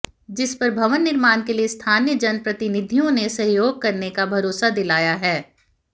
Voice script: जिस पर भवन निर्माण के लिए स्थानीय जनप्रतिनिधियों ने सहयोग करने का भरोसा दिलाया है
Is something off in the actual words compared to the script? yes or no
no